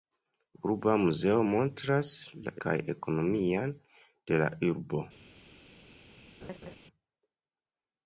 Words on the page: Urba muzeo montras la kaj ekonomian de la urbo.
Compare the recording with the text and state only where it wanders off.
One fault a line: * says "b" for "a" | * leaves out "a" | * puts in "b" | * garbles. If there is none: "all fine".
all fine